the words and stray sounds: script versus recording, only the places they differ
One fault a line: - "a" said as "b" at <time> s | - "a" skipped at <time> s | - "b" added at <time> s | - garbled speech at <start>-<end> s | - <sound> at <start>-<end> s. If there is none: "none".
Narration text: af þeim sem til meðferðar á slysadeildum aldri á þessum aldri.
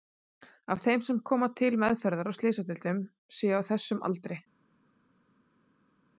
- "koma" added at 1.3 s
- "aldri" said as "séu" at 3.4 s